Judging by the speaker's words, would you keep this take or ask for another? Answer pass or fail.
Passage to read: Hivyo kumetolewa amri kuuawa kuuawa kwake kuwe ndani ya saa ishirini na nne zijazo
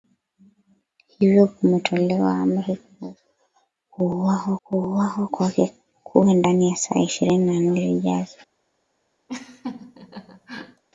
pass